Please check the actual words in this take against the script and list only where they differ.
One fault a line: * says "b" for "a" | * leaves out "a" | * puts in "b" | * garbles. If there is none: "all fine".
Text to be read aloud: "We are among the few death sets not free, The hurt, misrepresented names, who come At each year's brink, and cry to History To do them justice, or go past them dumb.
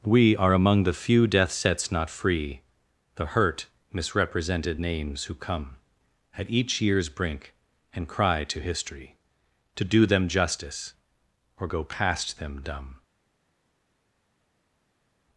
all fine